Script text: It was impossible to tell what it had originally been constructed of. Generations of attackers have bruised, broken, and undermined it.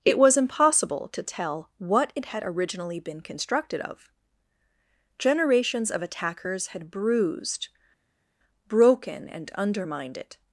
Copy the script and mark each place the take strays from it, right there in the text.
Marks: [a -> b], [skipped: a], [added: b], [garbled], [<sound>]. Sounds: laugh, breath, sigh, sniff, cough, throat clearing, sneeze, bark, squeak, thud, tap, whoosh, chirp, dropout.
It was impossible to tell what it had originally been constructed of. Generations of attackers [have -> had] bruised, broken, and undermined it.